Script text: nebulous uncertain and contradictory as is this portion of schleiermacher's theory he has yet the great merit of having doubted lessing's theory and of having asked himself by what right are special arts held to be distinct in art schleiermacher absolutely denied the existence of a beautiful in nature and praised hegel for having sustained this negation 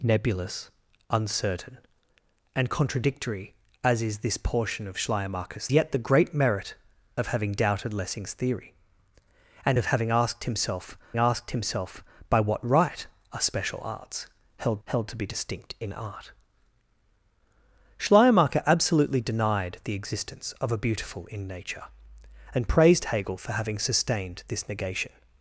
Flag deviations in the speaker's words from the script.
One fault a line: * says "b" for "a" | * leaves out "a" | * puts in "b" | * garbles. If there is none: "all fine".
* leaves out "theory he has"
* puts in "asked himself"
* puts in "held"